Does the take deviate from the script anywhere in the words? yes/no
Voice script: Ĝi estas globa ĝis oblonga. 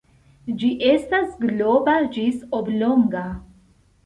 no